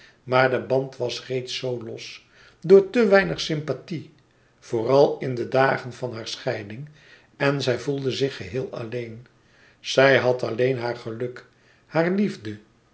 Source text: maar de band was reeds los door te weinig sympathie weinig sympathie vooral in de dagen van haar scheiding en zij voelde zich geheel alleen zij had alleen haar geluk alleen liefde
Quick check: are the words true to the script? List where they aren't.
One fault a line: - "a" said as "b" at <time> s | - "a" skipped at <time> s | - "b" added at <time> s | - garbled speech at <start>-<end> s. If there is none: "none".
- "zoo" added at 1.6 s
- "weinig sympathie" skipped at 4.1 s
- "alleen" said as "hare" at 11.8 s